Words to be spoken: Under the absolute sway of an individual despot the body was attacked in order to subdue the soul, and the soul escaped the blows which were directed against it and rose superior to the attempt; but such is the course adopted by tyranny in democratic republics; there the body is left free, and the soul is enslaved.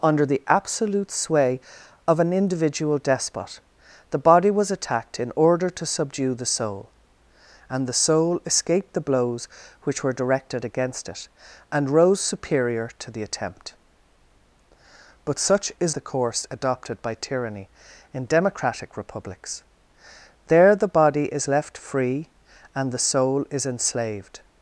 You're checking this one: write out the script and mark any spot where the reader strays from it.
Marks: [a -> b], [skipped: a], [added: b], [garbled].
Under the absolute sway of an individual despot the body was attacked in order to subdue the soul, and the soul escaped the blows which were directed against it and rose superior to the attempt; but such is the course adopted by tyranny in democratic republics; there the body is left free, and the soul is enslaved.